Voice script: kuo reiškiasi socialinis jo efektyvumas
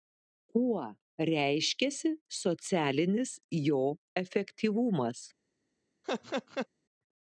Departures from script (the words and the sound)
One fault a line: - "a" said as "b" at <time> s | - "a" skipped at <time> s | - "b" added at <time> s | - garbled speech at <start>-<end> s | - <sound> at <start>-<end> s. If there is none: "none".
- laugh at 6.0-6.7 s